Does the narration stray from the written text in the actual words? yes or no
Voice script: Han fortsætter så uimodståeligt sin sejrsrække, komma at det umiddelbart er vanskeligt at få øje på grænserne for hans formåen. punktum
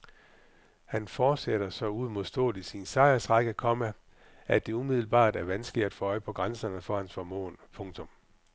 no